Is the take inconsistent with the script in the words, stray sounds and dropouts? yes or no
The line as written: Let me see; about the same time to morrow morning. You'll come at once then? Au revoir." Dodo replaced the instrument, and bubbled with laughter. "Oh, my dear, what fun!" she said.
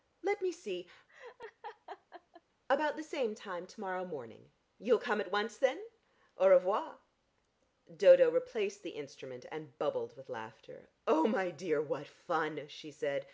yes